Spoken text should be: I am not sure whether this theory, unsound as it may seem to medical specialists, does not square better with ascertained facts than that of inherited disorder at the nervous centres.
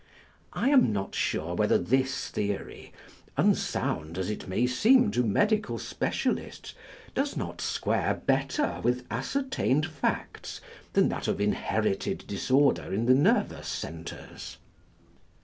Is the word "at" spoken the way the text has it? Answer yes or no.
no